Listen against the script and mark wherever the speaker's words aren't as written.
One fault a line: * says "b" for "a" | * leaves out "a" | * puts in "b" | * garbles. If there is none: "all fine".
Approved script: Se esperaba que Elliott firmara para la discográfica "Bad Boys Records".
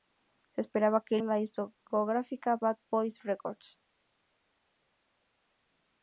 * leaves out "Elliott firmara para"